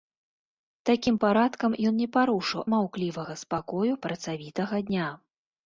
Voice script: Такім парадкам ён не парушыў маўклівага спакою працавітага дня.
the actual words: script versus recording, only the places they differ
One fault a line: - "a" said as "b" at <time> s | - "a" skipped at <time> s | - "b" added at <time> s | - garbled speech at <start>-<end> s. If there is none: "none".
none